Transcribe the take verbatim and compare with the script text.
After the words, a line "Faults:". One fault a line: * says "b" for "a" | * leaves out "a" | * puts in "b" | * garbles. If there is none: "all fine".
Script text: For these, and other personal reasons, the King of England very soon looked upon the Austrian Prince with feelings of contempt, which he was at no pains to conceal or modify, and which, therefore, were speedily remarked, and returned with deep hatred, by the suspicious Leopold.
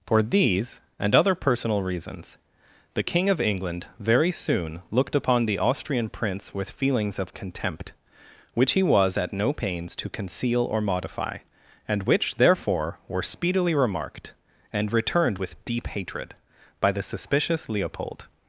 For these, and other personal reasons, the King of England very soon looked upon the Austrian Prince with feelings of contempt, which he was at no pains to conceal or modify, and which, therefore, were speedily remarked, and returned with deep hatred, by the suspicious Leopold.
Faults:
all fine